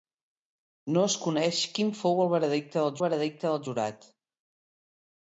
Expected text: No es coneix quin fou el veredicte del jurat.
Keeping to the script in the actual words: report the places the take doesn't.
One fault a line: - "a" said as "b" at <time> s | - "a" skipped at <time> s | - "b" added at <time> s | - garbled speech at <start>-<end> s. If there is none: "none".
- "veredicte del" added at 3.0 s